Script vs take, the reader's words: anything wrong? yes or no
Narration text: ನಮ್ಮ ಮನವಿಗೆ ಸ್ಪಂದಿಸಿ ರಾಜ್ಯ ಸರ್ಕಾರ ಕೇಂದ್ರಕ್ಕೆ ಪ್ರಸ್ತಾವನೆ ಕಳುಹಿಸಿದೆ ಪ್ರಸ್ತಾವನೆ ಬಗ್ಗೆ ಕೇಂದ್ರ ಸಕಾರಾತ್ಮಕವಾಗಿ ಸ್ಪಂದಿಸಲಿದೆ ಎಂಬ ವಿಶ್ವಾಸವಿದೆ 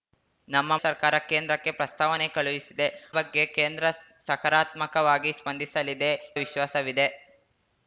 yes